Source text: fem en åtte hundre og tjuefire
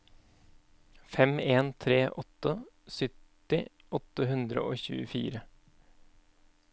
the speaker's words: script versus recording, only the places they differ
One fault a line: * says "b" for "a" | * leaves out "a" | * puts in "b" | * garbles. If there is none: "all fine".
* puts in "tre åtte sytti"